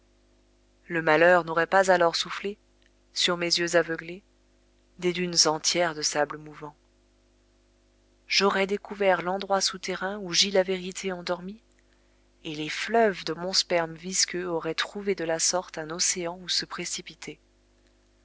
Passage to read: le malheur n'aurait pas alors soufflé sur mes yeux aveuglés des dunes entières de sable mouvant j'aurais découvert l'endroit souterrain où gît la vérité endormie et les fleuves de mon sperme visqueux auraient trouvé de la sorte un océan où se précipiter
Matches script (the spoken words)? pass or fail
pass